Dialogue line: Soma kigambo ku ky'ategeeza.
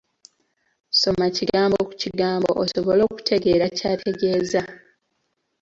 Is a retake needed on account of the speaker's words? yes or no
yes